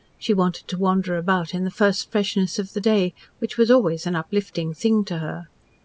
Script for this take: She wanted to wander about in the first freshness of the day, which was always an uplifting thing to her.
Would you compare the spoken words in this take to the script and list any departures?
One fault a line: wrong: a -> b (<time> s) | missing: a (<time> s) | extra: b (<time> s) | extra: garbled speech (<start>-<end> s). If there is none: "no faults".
no faults